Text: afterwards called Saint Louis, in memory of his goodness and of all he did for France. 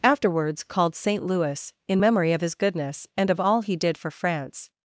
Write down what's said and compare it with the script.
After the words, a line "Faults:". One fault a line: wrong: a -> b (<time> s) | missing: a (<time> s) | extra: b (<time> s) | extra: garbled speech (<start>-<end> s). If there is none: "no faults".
afterwards called Saint Louis, in memory of his goodness and of all he did for France.
Faults:
no faults